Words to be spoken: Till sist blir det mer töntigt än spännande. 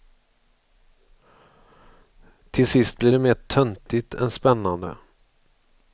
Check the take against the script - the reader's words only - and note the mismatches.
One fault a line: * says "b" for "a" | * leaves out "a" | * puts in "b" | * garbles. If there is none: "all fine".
all fine